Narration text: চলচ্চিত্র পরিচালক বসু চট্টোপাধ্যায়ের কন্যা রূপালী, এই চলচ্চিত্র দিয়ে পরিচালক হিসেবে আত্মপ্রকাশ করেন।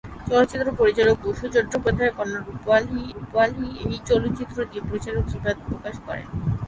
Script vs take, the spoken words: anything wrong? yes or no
yes